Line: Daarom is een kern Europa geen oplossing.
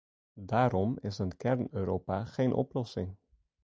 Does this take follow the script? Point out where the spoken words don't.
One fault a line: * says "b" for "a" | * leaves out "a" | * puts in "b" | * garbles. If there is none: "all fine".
all fine